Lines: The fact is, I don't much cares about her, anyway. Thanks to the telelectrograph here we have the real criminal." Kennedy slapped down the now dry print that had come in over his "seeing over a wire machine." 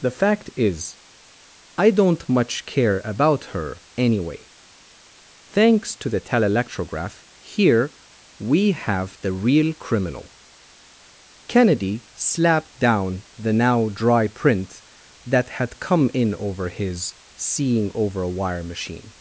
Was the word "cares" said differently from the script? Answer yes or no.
yes